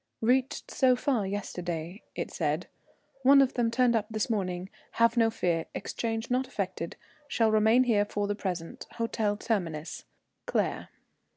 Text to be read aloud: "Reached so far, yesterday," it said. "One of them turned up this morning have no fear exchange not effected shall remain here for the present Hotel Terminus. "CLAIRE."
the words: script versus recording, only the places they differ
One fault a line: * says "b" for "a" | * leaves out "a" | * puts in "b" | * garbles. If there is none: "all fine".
all fine